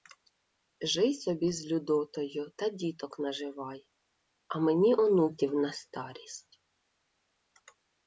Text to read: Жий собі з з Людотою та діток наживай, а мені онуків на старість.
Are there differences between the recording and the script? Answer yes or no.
yes